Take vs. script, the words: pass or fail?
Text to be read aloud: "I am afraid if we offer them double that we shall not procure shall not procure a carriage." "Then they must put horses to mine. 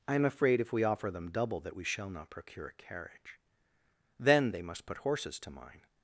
fail